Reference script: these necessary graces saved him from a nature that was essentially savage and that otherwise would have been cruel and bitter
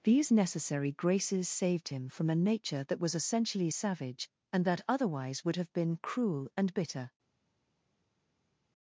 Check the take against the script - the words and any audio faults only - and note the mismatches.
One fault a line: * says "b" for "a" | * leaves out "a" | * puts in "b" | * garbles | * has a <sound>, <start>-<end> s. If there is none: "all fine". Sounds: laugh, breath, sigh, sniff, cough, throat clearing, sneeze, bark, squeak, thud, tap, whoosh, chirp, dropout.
all fine